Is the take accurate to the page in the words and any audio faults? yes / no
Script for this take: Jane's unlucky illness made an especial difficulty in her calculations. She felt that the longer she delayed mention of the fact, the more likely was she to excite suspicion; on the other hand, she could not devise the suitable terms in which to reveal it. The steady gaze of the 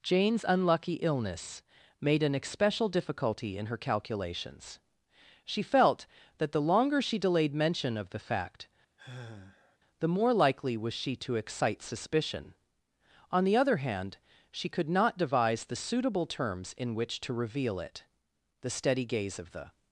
no